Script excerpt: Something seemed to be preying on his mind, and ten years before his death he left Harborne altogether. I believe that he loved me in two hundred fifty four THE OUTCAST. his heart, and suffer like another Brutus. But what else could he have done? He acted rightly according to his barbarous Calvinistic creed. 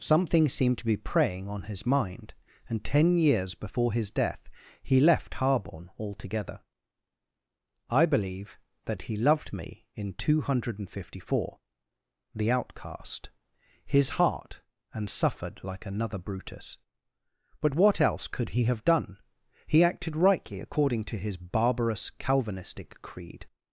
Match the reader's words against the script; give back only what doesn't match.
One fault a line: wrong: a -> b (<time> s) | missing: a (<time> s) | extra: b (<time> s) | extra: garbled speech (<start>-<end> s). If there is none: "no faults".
wrong: suffer -> suffered (15.1 s)